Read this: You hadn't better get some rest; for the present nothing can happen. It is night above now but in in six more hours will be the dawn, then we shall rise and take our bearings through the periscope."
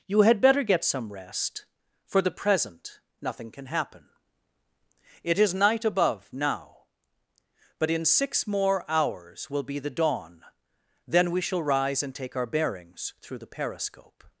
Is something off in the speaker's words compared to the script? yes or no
yes